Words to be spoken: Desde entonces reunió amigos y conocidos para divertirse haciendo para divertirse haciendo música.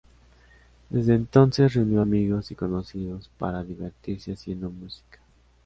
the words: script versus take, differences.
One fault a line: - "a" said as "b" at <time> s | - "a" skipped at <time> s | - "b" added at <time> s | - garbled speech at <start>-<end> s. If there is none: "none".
- "para divertirse haciendo" skipped at 4.7 s